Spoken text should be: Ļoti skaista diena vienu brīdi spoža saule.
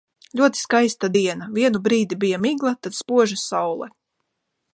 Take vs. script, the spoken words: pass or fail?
fail